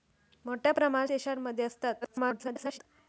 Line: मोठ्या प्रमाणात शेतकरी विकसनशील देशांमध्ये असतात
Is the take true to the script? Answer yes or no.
no